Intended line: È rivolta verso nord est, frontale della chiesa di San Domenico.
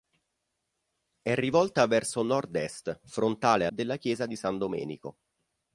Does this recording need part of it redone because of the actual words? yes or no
no